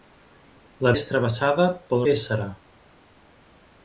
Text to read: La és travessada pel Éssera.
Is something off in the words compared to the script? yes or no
no